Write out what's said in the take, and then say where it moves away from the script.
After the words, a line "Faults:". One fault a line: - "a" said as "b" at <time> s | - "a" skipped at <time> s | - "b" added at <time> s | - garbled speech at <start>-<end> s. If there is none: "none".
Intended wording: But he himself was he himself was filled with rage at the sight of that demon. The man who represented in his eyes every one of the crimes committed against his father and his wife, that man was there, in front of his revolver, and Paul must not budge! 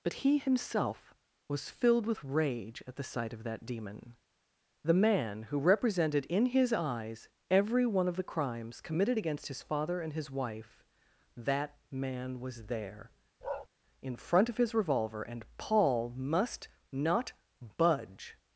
But he himself was filled with rage at the sight of that demon. The man who represented in his eyes every one of the crimes committed against his father and his wife, that man was there, in front of his revolver, and Paul must not budge!
Faults:
- "he himself was" skipped at 1.7 s